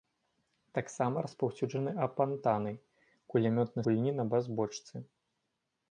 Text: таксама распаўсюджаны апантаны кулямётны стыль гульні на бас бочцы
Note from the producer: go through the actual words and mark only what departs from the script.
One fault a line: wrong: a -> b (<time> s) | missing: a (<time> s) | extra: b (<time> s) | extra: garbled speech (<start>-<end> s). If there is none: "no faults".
missing: стыль (3.8 s)